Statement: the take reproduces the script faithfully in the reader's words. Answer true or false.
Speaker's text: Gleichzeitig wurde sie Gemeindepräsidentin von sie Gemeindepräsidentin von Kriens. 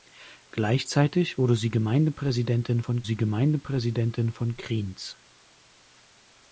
true